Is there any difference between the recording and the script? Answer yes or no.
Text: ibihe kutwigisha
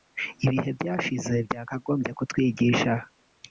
yes